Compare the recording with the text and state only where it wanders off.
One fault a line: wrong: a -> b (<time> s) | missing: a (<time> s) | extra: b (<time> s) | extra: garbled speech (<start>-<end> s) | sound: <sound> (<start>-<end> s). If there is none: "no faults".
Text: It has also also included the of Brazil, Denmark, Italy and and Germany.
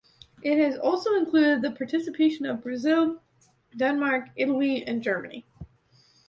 missing: also (1.1 s)
extra: participation (1.7 s)
missing: and (5.0 s)